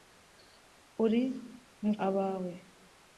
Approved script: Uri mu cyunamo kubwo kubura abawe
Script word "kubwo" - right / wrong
wrong